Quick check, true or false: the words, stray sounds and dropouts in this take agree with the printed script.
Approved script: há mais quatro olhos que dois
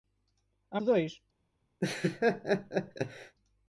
false